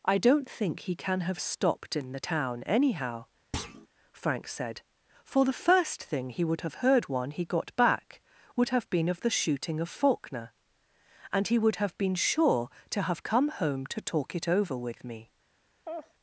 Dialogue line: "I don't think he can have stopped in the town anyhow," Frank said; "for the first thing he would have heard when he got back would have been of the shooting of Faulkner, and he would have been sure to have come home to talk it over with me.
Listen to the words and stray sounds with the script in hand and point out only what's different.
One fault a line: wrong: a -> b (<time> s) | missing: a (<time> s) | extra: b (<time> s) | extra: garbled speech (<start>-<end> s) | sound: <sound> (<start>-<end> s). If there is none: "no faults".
sound: thud (3.5-3.9 s)
wrong: when -> one (7.1 s)
sound: laugh (15.8-16.1 s)